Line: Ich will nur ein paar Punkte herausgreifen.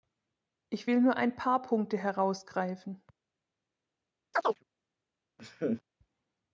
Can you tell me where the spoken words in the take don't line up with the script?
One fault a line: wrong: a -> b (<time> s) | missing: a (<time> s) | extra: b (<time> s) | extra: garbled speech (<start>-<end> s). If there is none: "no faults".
no faults